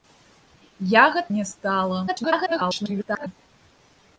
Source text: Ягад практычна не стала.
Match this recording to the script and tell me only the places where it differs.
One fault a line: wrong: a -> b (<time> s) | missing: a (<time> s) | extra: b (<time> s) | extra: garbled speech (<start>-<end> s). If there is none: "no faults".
missing: практычна (1.3 s)
extra: garbled speech (2.1-3.3 s)